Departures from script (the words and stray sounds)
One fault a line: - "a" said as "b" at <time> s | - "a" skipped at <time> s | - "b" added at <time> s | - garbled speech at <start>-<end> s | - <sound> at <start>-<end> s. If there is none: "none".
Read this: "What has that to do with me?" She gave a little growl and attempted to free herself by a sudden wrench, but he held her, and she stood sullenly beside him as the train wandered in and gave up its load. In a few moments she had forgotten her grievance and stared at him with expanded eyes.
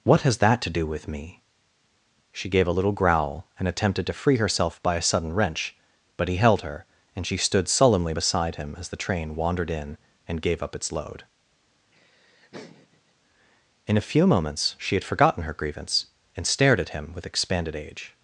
- laugh at 11.9-13.1 s
- "eyes" said as "age" at 17.7 s